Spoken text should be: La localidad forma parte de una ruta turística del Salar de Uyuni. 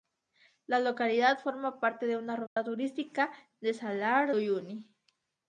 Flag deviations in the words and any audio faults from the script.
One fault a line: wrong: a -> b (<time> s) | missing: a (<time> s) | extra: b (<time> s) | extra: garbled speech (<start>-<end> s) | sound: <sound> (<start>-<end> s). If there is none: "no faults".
sound: dropout (2.5-2.6 s)
missing: de (4.3 s)